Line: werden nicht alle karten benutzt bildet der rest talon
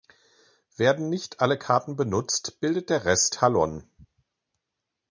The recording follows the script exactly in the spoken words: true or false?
true